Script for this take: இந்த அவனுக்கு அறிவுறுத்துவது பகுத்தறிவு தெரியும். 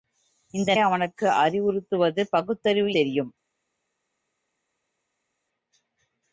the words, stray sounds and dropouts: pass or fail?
pass